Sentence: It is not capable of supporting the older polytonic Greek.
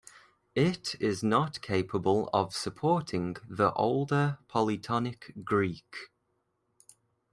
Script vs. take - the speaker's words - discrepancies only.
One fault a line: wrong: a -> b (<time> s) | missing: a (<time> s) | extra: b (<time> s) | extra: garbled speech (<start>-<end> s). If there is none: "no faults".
no faults